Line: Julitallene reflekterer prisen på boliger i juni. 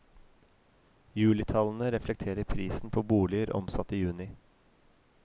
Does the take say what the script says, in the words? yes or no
no